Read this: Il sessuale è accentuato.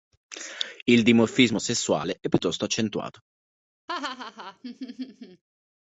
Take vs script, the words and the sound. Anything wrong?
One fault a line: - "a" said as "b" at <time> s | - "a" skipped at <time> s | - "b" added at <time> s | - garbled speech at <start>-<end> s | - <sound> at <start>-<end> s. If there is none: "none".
- "dimorfismo" added at 1.0 s
- "piuttosto" added at 2.3 s
- laugh at 3.9-5.4 s